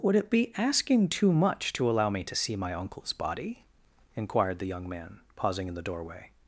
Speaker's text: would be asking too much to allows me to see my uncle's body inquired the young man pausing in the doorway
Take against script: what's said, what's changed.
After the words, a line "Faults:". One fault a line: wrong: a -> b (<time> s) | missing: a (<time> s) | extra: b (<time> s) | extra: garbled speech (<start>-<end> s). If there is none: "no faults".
would it be asking too much to allow me to see my uncle's body inquired the young man pausing in the doorway
Faults:
extra: it (0.1 s)
wrong: allows -> allow (1.9 s)